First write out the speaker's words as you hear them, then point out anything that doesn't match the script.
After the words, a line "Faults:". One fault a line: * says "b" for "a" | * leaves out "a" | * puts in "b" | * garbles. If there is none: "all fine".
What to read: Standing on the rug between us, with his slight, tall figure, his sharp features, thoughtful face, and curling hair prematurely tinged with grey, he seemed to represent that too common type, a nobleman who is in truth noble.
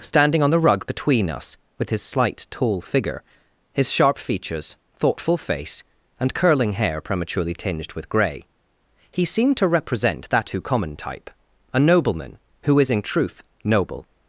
Standing on the rug between us, with his slight, tall figure, his sharp features, thoughtful face, and curling hair prematurely tinged with grey, he seemed to represent that too common type, a nobleman who is in truth noble.
Faults:
all fine